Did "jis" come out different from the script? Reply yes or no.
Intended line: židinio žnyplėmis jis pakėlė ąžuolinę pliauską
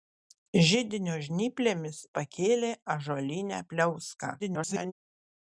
yes